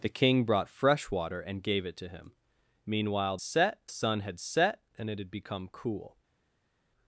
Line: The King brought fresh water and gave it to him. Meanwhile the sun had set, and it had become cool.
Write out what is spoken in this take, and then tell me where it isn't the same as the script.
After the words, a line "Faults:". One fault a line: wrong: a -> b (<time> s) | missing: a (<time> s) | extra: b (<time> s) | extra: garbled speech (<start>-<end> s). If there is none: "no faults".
The King brought fresh water and gave it to him. Meanwhile set sun had set, and it had become cool.
Faults:
wrong: the -> set (3.4 s)